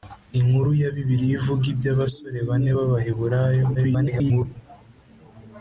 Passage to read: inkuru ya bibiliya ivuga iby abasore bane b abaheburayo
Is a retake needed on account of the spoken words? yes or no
yes